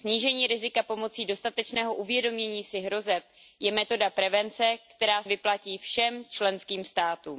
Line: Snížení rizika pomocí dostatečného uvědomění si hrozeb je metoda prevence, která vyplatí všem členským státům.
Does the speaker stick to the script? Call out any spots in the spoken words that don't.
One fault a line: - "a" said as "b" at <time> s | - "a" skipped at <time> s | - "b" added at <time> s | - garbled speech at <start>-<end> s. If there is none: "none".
none